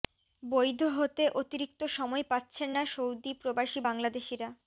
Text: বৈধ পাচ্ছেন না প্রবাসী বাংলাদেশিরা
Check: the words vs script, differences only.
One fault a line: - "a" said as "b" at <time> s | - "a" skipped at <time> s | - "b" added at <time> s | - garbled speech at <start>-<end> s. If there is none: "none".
- "হতে অতিরিক্ত সময়" added at 1.0 s
- "সৌদি" added at 2.9 s